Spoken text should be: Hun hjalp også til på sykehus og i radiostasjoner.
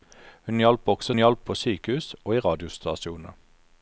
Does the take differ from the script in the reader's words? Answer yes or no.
yes